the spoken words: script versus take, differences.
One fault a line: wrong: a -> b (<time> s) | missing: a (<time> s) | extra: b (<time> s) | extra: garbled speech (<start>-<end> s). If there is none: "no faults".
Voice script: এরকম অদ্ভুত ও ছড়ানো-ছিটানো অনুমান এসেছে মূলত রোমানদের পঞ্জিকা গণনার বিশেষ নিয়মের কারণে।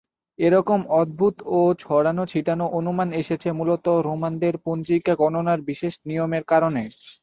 no faults